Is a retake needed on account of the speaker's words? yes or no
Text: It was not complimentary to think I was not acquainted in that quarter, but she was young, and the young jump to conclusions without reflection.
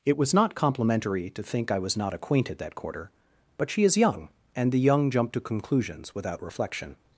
yes